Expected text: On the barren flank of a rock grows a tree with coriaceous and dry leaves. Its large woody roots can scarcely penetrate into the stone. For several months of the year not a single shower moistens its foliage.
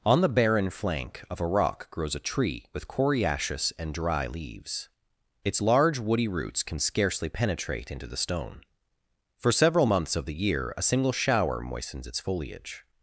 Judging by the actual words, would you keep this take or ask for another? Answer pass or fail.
fail